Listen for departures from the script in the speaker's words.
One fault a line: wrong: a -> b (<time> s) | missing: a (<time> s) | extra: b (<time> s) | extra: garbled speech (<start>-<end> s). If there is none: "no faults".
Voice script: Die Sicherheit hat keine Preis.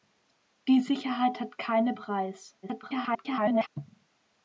extra: garbled speech (2.6-3.7 s)